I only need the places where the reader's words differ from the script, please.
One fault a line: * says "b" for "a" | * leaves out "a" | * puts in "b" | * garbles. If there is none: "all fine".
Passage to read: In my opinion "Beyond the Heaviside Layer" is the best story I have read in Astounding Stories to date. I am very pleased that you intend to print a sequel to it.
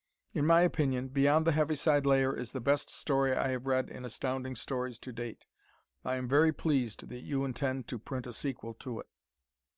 all fine